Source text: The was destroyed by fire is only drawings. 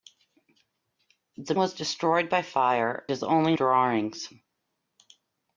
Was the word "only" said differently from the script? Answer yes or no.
no